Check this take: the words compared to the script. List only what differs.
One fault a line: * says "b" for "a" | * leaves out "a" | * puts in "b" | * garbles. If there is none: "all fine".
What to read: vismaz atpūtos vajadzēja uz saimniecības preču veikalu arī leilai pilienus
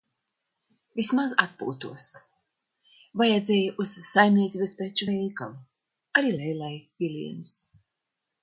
all fine